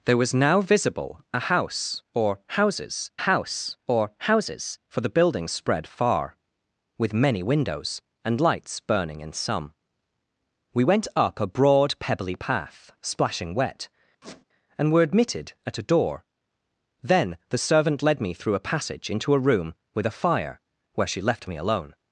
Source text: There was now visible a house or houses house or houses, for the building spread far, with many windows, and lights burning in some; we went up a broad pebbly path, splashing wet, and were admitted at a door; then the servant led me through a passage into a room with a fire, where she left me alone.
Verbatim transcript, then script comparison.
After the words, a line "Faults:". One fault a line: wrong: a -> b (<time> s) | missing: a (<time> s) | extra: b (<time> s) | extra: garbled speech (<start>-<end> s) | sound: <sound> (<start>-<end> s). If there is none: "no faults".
There was now visible a house or houses house or houses, for the building spread far, with many windows, and lights burning in some; we went up a broad pebbly path, splashing wet, and were admitted at a door; then the servant led me through a passage into a room with a fire, where she left me alone.
Faults:
sound: squeak (14.2-14.4 s)